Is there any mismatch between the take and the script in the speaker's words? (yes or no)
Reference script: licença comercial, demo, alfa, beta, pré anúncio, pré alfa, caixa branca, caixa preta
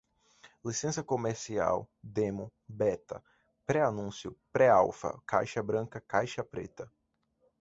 yes